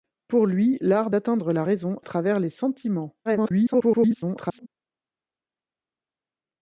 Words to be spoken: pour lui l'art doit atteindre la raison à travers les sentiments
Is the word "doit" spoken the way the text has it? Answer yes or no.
no